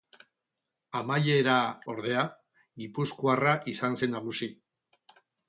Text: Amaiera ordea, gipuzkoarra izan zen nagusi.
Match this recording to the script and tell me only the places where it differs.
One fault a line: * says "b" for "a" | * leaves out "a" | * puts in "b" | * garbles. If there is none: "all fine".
all fine